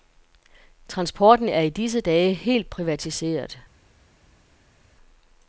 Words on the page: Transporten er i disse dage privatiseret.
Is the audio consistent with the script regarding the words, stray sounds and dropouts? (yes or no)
no